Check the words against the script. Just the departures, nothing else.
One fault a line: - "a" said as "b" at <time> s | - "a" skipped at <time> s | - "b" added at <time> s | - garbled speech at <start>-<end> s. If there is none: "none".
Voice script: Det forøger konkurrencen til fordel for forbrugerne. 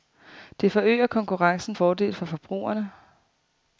- "til" skipped at 1.8 s